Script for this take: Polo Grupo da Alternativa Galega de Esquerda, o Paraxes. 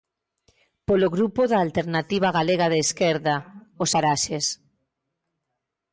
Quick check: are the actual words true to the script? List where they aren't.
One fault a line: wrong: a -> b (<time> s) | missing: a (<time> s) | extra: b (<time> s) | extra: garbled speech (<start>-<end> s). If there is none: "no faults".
no faults